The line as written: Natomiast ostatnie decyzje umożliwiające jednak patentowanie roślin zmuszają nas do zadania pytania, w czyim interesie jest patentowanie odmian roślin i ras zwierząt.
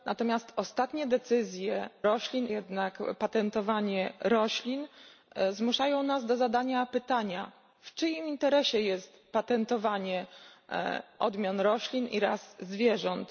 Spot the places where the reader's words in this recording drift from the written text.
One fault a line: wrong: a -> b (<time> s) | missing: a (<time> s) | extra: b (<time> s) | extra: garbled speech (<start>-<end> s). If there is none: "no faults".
wrong: umożliwiające -> roślin (2.0 s)